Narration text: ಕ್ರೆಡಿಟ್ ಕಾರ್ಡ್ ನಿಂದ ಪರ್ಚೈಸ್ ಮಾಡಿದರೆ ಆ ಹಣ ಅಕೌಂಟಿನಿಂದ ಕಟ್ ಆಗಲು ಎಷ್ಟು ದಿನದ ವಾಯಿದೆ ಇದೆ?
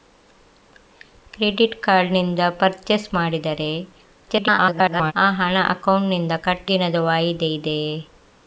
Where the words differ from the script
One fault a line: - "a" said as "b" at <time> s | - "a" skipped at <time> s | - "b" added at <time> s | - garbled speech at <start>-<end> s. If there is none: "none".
- garbled speech at 4.3-5.1 s
- "ಆಗಲು ಎಷ್ಟು" skipped at 6.7 s